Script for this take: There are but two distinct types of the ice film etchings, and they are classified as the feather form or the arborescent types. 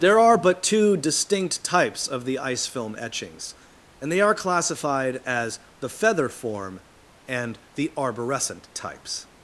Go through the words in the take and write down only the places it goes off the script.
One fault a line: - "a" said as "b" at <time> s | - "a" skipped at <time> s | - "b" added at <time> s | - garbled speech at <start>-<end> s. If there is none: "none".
- "or" said as "and" at 7.3 s